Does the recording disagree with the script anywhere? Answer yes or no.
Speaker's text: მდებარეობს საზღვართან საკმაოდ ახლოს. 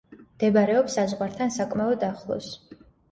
no